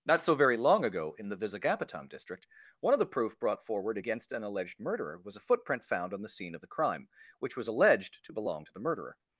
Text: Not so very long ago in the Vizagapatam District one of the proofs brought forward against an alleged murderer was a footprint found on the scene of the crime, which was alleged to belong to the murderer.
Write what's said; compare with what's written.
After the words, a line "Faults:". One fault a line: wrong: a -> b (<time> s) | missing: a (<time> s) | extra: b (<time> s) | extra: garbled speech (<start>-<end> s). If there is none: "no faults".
Not so very long ago in the Vizagapatam District one of the proof brought forward against an alleged murderer was a footprint found on the scene of the crime, which was alleged to belong to the murderer.
Faults:
wrong: proofs -> proof (3.0 s)